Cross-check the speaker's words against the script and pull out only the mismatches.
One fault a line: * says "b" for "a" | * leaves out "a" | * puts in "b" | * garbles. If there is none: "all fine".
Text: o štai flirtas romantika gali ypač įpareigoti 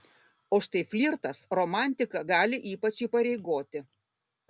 all fine